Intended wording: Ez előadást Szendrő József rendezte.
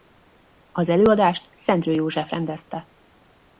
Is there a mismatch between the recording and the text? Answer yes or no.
yes